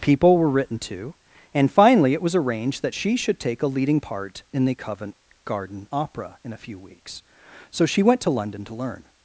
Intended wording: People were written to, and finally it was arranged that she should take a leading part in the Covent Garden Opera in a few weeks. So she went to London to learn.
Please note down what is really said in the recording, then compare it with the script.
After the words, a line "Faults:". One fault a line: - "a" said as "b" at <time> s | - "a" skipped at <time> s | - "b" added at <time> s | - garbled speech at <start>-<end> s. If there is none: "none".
People were written to, and finally it was arranged that she should take a leading part in the Covent Garden Opera in a few weeks. So she went to London to learn.
Faults:
none